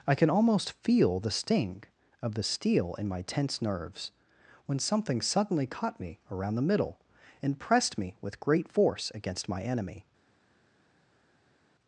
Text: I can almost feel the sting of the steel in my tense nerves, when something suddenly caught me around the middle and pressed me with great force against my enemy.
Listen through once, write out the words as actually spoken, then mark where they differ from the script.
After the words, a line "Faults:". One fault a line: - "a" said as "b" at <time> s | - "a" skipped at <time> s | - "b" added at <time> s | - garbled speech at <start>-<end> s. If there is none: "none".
I can almost feel the sting of the steel in my tense nerves, when something suddenly caught me around the middle and pressed me with great force against my enemy.
Faults:
none